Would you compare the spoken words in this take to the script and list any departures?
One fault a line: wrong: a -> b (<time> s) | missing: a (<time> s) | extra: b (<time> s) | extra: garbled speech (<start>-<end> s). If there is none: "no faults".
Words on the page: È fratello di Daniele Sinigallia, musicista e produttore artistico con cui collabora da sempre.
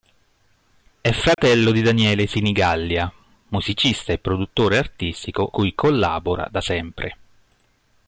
missing: con (5.5 s)